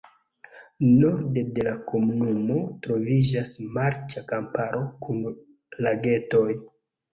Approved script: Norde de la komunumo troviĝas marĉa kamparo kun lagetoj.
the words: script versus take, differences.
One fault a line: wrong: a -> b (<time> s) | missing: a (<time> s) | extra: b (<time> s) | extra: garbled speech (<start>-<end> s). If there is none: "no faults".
no faults